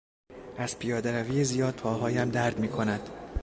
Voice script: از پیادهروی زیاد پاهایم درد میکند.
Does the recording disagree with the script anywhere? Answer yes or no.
no